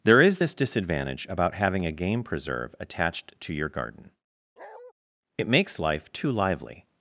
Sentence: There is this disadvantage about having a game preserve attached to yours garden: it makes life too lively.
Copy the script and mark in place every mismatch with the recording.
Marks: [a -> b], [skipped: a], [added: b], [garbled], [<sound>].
There is this disadvantage about having a game preserve attached to [yours -> your] garden: [bark] it makes life too lively.